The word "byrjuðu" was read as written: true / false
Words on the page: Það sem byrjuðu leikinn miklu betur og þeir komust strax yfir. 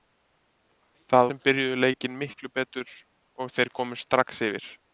true